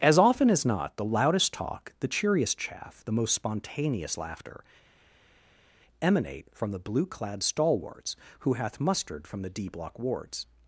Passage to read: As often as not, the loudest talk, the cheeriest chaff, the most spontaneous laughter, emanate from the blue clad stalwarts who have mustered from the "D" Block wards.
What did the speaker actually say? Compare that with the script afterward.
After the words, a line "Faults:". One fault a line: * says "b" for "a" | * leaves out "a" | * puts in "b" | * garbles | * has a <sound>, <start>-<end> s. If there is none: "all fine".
As often as not, the loudest talk, the cheeriest chaff, the most spontaneous laughter, emanate from the blue clad stalwarts who hath mustered from the "D" Block wards.
Faults:
* says "hath" for "have"